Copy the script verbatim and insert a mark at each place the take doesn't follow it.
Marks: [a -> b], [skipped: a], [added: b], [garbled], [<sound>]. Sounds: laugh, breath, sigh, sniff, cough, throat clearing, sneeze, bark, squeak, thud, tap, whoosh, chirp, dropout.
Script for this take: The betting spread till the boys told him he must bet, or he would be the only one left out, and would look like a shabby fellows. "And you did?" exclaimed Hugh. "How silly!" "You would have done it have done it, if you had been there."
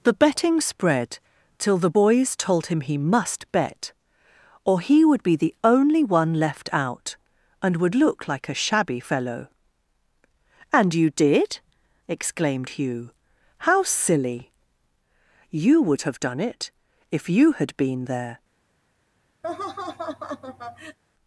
The betting spread till the boys told him he must bet, or he would be the only one left out, and would look like a shabby [fellows. -> fellow] "And you did?" exclaimed Hugh. "How silly!" "You would have done it [skipped: have done it,] if you had been there." [laugh]